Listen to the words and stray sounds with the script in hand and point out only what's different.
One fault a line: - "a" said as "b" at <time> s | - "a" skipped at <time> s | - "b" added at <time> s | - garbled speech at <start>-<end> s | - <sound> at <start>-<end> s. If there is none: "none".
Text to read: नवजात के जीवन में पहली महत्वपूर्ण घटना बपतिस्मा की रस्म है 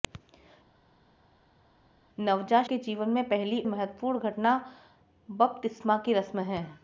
none